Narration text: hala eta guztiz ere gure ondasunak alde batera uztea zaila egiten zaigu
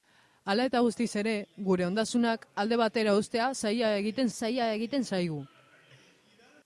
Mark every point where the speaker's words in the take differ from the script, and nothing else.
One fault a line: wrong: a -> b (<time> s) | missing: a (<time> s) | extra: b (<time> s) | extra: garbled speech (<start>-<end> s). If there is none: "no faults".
extra: zaila egiten (4.3 s)